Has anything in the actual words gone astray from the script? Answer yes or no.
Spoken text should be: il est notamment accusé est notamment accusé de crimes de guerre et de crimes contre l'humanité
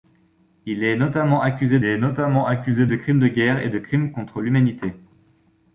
no